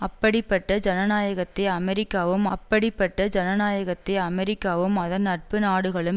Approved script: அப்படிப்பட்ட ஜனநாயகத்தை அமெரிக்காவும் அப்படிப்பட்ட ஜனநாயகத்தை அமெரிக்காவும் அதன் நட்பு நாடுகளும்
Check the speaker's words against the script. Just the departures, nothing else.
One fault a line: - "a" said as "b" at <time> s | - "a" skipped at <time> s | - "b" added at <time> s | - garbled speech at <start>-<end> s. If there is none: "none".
none